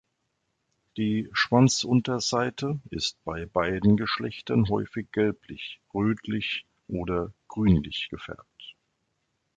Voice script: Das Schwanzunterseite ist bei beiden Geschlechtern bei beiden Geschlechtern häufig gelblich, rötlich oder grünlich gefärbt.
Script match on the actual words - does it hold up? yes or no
no